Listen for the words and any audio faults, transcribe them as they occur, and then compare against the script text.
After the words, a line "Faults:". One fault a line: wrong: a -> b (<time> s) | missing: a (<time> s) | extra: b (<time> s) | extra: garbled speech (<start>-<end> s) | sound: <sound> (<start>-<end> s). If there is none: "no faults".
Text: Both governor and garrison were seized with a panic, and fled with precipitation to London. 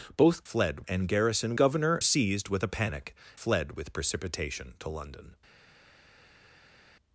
Both fled and garrison governor seized with a panic, fled with precipitation to London.
Faults:
wrong: governor -> fled (0.4 s)
wrong: were -> governor (1.6 s)
missing: and (3.1 s)